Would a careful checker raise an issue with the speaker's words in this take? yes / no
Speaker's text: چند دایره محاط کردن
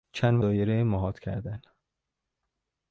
no